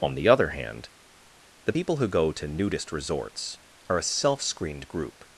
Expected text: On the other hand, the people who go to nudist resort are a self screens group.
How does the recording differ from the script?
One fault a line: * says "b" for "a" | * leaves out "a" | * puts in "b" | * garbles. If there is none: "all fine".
* says "resorts" for "resort"
* says "screened" for "screens"